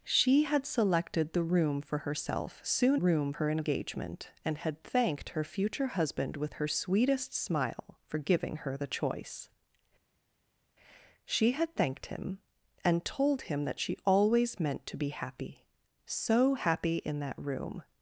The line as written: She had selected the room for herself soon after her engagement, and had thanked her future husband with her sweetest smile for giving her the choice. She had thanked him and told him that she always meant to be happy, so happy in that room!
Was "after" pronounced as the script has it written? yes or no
no